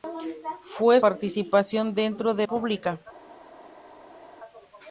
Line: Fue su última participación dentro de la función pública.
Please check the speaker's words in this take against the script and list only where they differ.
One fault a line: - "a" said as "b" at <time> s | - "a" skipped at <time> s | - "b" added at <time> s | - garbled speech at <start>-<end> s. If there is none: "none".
- "su última" skipped at 1.0 s
- "la función" skipped at 2.5 s